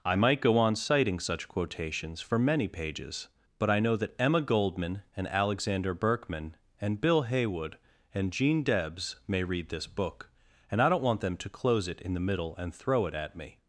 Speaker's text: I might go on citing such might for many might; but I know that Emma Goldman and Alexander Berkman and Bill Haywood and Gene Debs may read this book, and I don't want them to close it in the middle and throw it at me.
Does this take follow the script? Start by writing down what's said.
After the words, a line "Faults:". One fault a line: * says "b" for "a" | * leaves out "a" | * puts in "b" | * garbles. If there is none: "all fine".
I might go on citing such quotations for many pages; but I know that Emma Goldman and Alexander Berkman and Bill Haywood and Gene Debs may read this book, and I don't want them to close it in the middle and throw it at me.
Faults:
* says "quotations" for "might"
* says "pages" for "might"